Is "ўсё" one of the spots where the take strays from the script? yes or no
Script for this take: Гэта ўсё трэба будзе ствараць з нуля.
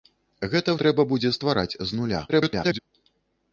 yes